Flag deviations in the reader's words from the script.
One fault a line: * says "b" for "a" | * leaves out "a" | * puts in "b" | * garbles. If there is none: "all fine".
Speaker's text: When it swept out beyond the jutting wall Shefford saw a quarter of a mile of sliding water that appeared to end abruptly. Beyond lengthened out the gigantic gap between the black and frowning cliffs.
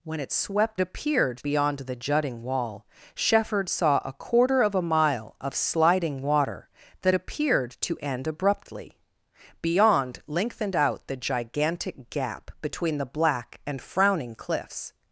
* says "appeared" for "out"